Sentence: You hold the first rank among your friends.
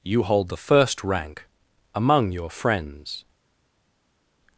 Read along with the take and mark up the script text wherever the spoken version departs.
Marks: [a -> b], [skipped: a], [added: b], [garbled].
You hold the first rank among your friends.